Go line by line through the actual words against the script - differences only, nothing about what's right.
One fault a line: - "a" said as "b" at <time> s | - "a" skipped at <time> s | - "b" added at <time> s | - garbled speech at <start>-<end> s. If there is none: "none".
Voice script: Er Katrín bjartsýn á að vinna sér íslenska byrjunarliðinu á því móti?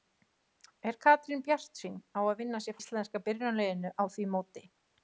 none